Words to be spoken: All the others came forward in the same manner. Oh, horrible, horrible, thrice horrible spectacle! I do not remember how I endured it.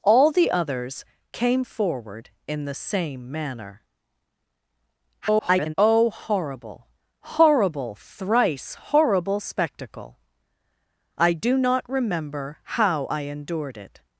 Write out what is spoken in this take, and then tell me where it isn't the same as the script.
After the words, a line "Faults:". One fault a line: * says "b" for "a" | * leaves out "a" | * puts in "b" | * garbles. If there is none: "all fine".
All the others came forward in the same manner. [garbled] Oh, horrible, horrible, thrice horrible spectacle! I do not remember how I endured it.
Faults:
* garbles